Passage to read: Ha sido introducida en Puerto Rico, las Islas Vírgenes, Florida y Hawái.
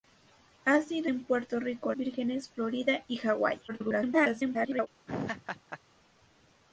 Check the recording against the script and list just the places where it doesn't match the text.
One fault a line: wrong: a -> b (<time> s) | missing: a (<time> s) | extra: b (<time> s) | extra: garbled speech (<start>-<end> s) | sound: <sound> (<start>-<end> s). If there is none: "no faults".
missing: introducida (1.1 s)
missing: las Islas (1.9 s)
extra: garbled speech (3.7-4.9 s)
sound: laugh (5.1-5.8 s)